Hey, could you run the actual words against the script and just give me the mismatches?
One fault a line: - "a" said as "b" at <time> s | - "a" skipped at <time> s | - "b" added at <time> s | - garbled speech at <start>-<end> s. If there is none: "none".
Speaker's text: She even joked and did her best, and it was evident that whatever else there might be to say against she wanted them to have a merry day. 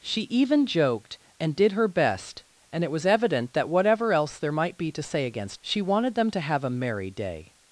none